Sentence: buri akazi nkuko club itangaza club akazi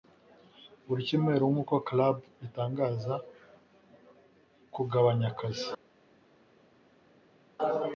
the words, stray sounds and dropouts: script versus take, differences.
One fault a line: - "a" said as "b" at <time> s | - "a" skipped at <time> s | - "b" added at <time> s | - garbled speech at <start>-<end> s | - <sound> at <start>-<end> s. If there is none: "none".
- "akazi" said as "cyumweru" at 1.1 s
- "club" said as "kugabanya" at 4.7 s